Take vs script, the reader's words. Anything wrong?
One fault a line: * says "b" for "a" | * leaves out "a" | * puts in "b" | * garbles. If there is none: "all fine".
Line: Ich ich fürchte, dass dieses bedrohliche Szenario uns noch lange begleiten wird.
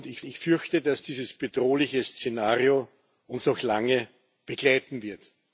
all fine